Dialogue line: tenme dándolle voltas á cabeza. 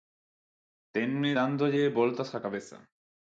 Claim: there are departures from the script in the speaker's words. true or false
false